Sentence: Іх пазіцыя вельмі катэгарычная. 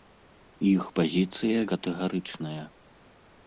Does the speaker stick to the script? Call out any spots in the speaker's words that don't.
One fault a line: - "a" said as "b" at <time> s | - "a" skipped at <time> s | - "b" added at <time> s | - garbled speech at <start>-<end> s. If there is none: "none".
- "вельмі" skipped at 1.6 s